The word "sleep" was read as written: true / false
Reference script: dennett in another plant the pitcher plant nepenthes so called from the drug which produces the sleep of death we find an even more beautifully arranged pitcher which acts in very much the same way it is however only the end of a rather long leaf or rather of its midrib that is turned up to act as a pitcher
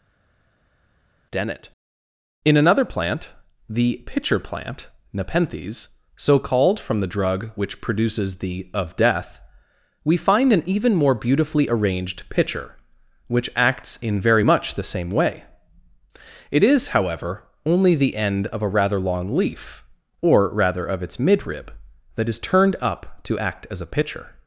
false